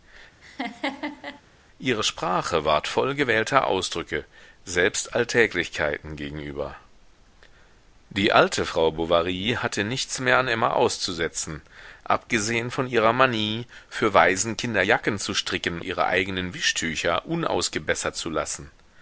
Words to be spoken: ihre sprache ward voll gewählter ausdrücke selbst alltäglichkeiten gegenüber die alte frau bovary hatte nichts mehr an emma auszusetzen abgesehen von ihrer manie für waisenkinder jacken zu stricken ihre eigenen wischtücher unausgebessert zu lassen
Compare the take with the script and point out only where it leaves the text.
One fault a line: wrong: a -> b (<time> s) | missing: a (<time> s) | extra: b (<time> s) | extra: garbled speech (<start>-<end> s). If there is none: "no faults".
no faults